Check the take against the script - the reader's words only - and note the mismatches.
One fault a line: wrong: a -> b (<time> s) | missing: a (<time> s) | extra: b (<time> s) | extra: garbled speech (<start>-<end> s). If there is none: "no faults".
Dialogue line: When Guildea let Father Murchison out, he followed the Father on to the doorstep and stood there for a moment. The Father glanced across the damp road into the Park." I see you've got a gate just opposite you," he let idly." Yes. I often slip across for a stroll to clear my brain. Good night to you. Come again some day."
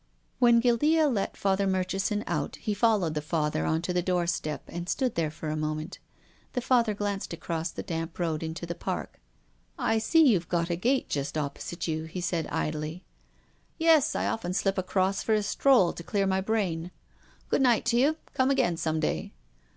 wrong: let -> said (12.2 s)